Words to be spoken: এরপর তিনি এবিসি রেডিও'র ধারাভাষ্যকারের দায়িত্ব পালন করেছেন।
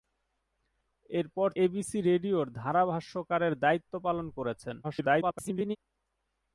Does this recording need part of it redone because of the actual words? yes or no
yes